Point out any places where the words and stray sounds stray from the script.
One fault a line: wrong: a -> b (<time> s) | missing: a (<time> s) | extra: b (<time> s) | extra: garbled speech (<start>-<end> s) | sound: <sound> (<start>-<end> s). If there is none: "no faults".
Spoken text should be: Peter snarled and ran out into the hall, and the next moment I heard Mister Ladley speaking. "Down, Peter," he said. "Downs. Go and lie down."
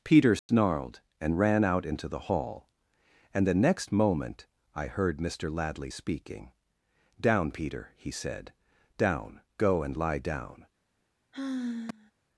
sound: dropout (0.4-0.5 s)
wrong: Downs -> Down (9.0 s)
sound: sigh (11.3-12.1 s)